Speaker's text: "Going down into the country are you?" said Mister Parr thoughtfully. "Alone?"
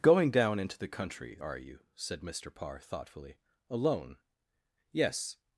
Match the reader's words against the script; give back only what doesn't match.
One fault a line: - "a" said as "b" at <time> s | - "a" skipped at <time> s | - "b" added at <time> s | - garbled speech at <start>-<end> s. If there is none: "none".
- "Yes" added at 4.9 s